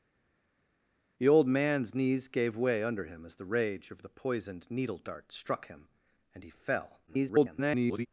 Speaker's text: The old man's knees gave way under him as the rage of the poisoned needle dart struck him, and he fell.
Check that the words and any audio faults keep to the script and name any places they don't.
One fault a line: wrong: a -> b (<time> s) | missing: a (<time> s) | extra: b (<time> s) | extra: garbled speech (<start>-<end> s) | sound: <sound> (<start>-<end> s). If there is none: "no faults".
extra: garbled speech (7.1-8.1 s)